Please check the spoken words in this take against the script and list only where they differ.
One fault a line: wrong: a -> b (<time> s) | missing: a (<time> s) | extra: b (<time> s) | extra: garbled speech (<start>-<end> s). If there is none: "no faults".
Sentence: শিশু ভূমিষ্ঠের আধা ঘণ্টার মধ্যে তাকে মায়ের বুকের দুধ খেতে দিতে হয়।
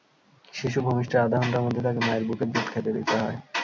no faults